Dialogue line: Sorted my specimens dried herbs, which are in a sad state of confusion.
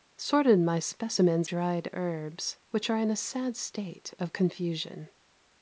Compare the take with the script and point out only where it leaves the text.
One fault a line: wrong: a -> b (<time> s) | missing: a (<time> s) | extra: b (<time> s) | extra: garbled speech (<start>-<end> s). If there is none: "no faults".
no faults